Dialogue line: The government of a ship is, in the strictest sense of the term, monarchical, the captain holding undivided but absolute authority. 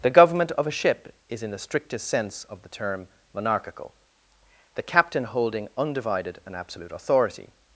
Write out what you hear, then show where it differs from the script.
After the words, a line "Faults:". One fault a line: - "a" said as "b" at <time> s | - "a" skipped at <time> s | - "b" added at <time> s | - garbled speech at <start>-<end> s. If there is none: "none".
The government of a ship is, in the strictest sense of the term, monarchical, the captain holding undivided and absolute authority.
Faults:
- "but" said as "and" at 6.4 s